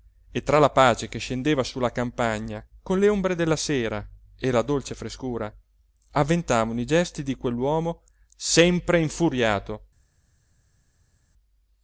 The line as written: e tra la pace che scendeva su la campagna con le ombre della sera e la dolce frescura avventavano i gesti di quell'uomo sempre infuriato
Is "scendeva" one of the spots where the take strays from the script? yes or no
no